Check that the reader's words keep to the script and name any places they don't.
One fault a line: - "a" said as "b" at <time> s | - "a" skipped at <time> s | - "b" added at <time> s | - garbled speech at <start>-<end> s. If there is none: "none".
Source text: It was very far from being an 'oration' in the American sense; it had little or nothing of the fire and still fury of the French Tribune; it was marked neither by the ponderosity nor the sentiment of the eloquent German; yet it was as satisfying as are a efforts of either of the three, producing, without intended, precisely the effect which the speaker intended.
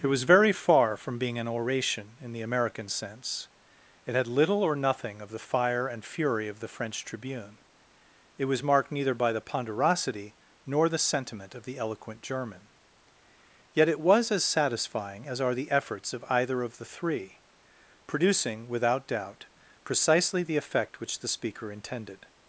- "still" skipped at 6.0 s
- "a" said as "the" at 15.5 s
- "intended" said as "doubt" at 19.1 s